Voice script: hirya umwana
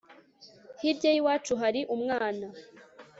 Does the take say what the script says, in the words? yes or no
no